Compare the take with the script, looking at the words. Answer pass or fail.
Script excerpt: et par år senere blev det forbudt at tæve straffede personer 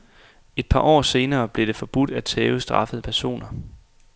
pass